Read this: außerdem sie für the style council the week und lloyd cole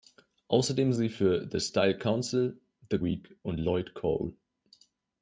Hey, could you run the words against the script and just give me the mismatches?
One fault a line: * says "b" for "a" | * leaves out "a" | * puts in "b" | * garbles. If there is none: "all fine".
all fine